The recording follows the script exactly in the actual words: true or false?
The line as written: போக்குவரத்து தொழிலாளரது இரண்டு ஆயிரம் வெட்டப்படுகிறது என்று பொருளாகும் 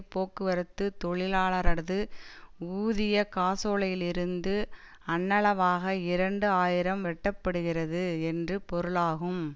false